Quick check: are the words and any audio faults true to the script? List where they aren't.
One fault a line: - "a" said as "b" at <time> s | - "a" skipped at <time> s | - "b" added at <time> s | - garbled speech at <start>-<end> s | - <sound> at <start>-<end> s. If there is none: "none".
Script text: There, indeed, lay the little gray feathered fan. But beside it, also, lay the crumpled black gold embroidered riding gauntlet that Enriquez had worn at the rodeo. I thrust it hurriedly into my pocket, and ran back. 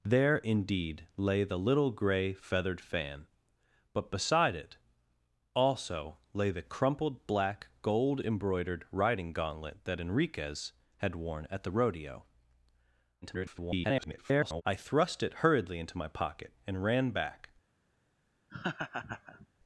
- garbled speech at 13.2-14.6 s
- laugh at 18.5-19.5 s